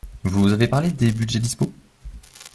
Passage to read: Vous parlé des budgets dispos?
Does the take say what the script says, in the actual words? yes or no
no